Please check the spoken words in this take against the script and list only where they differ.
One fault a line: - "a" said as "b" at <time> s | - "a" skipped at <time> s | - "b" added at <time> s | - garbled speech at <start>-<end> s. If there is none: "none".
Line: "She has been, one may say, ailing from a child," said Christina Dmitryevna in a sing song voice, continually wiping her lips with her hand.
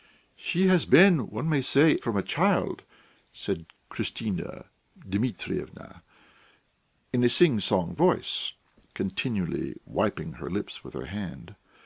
- "ailing" skipped at 2.0 s